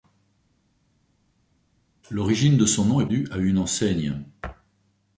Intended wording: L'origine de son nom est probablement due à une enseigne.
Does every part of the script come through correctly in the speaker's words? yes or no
no